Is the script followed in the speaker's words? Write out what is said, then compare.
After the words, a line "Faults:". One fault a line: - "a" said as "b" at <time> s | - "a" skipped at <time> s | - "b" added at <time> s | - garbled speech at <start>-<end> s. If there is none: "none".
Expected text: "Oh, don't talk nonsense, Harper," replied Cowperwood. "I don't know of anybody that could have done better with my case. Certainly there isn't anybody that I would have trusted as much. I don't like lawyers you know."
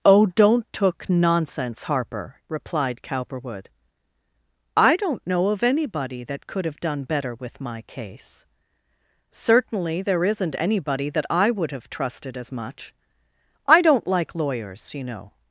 "Oh, don't took nonsense, Harper," replied Cowperwood. "I don't know of anybody that could have done better with my case. Certainly there isn't anybody that I would have trusted as much. I don't like lawyers you know."
Faults:
- "talk" said as "took" at 0.7 s